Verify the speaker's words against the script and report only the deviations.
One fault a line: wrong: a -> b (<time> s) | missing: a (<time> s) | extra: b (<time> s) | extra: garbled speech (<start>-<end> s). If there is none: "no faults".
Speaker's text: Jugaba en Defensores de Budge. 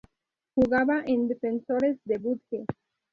no faults